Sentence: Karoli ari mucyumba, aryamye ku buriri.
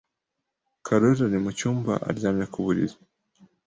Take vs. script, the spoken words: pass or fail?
pass